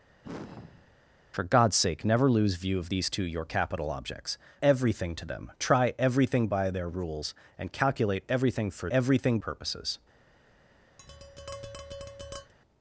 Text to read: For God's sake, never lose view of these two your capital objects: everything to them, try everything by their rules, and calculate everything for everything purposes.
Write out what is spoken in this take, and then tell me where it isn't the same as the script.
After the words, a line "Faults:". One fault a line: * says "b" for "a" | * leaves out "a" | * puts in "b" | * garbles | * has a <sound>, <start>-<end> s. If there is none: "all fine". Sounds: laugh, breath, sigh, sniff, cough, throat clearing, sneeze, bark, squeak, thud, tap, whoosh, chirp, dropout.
For God's sake, never lose view of these two your capital objects: everything to them, try everything by their rules, and calculate everything for everything purposes.
Faults:
* has a sigh, 0.2-1.0 s
* has a tap, 11.0-12.5 s